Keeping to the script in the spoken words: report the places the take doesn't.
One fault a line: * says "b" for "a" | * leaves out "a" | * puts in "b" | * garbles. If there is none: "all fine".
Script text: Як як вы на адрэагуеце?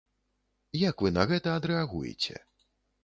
* leaves out "як"
* puts in "гэта"